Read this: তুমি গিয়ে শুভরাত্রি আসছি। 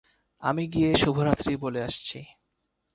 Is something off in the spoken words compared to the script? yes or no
yes